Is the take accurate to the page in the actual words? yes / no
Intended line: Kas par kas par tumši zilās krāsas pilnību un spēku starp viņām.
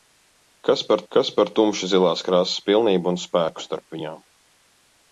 yes